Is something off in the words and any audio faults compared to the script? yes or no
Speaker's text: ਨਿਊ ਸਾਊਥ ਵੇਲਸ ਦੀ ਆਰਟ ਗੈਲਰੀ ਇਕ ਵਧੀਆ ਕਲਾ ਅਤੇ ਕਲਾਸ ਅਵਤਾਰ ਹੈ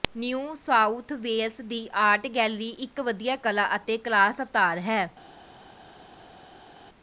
no